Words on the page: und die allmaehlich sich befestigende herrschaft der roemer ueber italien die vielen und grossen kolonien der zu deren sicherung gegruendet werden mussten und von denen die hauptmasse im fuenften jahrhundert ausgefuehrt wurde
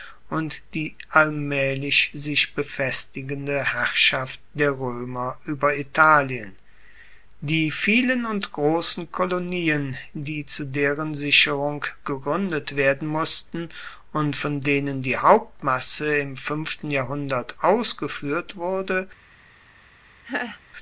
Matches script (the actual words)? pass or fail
fail